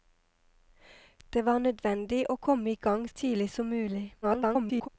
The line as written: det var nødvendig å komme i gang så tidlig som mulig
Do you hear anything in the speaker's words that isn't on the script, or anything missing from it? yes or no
yes